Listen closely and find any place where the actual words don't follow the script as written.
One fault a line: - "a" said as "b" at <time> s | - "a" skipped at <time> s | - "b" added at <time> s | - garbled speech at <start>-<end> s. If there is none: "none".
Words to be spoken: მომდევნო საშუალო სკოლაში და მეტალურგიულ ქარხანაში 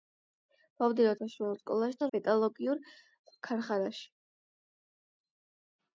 none